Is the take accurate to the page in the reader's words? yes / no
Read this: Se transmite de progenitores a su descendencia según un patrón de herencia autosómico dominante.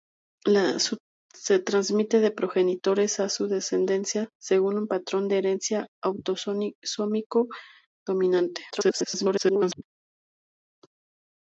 no